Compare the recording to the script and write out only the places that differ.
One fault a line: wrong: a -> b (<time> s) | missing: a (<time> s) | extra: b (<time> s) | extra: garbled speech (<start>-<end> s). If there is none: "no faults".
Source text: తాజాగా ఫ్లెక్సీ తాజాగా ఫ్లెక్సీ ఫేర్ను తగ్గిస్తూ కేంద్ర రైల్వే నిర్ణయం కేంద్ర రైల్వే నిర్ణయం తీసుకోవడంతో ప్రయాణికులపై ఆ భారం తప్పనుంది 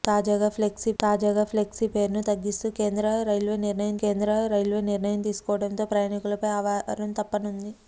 no faults